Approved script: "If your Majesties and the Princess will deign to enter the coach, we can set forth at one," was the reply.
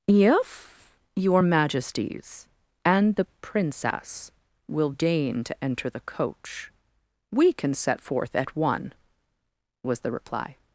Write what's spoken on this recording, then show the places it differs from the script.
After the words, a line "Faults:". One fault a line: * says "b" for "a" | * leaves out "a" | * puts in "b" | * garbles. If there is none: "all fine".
"If your Majesties and the Princess will deign to enter the coach, we can set forth at one," was the reply.
Faults:
all fine